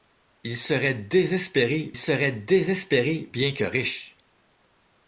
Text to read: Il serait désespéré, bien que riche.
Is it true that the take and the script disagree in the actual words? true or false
true